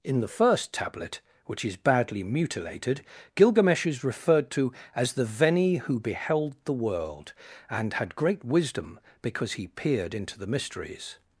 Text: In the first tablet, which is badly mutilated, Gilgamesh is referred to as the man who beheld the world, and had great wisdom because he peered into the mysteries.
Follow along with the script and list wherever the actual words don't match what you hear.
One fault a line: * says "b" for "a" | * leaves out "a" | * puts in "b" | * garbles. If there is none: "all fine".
* says "veni" for "man"